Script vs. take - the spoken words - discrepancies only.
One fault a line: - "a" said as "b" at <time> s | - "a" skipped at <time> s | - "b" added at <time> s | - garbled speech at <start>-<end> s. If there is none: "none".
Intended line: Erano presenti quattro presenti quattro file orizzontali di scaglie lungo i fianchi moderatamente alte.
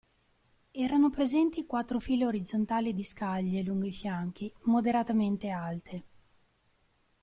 - "presenti quattro" skipped at 2.0 s